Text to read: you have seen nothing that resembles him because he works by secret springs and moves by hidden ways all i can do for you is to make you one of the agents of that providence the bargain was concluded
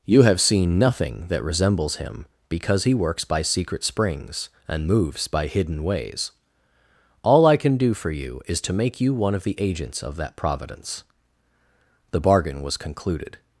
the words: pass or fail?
pass